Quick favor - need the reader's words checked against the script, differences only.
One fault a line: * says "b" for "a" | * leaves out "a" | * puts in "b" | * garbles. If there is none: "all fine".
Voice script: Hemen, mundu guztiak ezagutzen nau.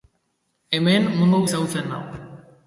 * leaves out "guztiak"